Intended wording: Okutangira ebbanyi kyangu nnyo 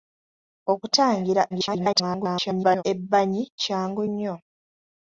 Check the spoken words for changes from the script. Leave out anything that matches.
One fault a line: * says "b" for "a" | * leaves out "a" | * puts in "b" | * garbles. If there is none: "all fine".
* garbles